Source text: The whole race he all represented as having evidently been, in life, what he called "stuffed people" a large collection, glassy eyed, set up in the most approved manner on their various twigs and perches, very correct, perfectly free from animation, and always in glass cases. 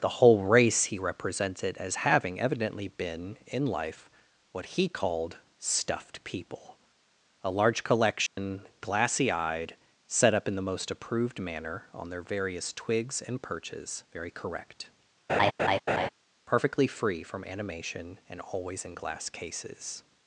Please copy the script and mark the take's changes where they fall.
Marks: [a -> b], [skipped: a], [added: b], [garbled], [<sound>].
The whole race he [skipped: all] represented as having evidently been, in life, what he called "stuffed people" a large collection, [dropout] glassy eyed, set up in the most approved manner on their various twigs and perches, very correct, [laugh] perfectly free from animation, and always in glass cases.